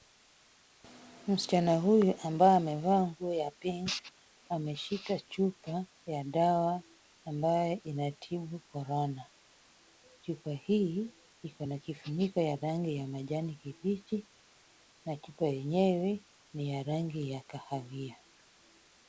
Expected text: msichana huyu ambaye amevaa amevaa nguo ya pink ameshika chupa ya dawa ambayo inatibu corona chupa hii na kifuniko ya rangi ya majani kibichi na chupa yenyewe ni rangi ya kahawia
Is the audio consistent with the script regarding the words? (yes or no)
no